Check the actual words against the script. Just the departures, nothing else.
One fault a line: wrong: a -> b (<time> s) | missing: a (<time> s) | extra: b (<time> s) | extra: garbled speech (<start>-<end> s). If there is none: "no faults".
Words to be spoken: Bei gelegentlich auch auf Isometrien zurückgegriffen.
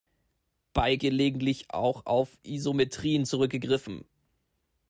no faults